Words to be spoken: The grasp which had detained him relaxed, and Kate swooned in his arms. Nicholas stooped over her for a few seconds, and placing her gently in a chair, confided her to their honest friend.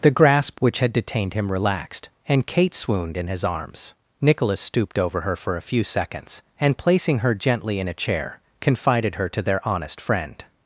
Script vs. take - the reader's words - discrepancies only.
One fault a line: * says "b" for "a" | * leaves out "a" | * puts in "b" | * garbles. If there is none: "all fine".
all fine